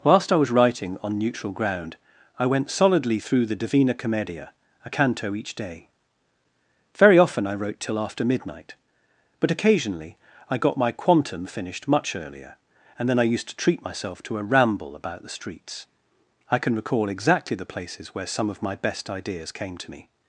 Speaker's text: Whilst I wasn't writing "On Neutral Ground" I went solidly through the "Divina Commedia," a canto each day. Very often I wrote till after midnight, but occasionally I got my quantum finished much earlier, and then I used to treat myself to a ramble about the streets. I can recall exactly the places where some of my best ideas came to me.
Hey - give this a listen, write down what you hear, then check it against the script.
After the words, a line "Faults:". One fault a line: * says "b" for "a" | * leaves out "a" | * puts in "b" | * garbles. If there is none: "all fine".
Whilst I was writing "On Neutral Ground" I went solidly through the "Divina Commedia," a canto each day. Very often I wrote till after midnight, but occasionally I got my quantum finished much earlier, and then I used to treat myself to a ramble about the streets. I can recall exactly the places where some of my best ideas came to me.
Faults:
* says "was" for "wasn't"